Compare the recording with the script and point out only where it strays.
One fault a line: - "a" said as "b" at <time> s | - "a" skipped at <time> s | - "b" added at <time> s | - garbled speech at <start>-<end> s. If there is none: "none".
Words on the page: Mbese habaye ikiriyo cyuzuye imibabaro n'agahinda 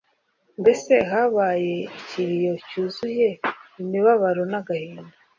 none